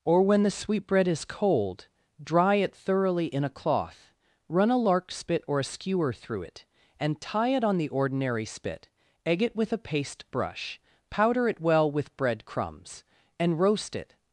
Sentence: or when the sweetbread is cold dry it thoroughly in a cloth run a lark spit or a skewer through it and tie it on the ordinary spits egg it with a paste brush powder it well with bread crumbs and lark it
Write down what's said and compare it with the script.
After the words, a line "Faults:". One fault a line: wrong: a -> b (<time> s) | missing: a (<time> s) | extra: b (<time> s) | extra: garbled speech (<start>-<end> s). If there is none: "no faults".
or when the sweetbread is cold dry it thoroughly in a cloth run a lark spit or a skewer through it and tie it on the ordinary spit egg it with a paste brush powder it well with bread crumbs and roast it
Faults:
wrong: spits -> spit (8.4 s)
wrong: lark -> roast (13.6 s)